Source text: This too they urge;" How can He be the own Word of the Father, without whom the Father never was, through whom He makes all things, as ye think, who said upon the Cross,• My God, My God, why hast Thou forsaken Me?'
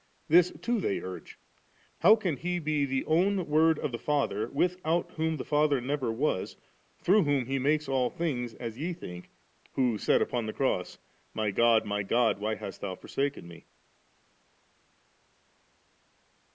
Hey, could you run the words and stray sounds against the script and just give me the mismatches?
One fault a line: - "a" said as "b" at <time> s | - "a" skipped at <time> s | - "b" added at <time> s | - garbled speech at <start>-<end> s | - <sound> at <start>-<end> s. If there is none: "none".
none